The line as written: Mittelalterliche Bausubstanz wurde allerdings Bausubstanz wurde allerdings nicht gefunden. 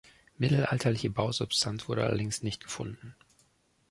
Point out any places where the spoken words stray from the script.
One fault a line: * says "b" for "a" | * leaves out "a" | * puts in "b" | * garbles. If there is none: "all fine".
* leaves out "Bausubstanz wurde allerdings"